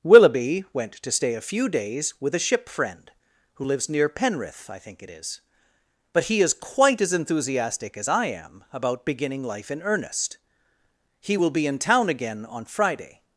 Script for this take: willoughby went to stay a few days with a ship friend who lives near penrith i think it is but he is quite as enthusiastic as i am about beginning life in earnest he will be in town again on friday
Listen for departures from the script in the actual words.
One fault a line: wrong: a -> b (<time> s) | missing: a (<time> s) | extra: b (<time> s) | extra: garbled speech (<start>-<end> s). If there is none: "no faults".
no faults